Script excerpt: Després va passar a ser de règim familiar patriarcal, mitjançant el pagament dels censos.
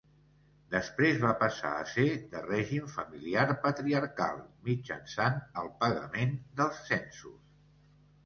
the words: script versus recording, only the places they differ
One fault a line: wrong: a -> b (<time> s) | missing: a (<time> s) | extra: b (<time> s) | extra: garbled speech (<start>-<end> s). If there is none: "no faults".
no faults